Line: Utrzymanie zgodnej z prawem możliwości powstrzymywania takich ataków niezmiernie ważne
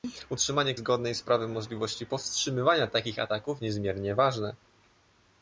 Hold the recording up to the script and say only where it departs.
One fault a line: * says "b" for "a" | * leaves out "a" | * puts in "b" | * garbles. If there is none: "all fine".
all fine